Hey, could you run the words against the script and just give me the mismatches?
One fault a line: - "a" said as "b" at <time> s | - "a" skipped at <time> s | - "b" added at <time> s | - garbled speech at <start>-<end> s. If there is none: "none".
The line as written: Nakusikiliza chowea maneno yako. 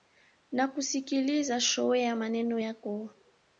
none